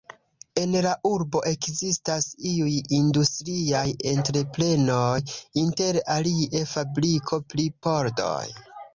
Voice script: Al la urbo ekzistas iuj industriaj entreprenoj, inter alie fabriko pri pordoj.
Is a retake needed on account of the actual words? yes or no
yes